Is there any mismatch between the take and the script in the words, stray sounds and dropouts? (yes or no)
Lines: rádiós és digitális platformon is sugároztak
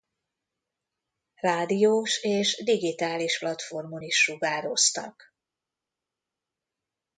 no